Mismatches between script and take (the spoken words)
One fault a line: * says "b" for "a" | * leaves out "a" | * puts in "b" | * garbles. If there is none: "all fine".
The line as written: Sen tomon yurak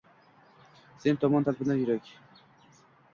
* puts in "talpinar"